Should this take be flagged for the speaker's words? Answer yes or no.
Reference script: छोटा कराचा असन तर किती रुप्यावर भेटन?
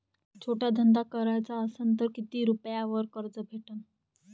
yes